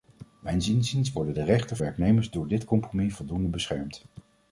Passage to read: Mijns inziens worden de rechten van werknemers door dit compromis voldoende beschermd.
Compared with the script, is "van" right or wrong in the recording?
wrong